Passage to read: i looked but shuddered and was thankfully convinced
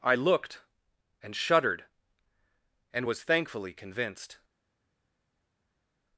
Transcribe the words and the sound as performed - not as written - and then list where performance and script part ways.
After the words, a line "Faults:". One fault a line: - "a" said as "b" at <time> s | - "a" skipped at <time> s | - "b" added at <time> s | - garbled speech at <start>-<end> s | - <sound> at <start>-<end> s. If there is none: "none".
i looked and shuddered and was thankfully convinced
Faults:
- "but" said as "and" at 1.2 s